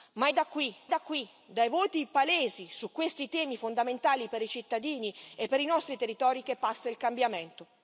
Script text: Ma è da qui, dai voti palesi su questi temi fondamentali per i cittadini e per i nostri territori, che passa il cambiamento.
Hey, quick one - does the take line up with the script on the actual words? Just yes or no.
no